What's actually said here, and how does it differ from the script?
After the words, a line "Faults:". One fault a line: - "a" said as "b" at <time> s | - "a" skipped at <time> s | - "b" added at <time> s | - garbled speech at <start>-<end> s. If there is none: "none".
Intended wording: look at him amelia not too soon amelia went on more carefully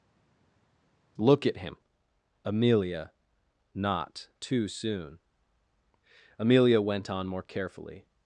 look at him amelia not too soon amelia went on more carefully
Faults:
none